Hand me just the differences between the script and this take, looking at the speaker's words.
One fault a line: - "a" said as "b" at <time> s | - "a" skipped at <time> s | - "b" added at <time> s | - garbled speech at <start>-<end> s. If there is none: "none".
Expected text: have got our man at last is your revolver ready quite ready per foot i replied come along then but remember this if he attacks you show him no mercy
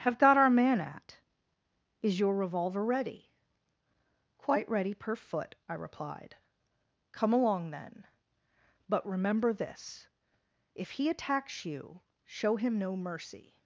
- "last" skipped at 1.2 s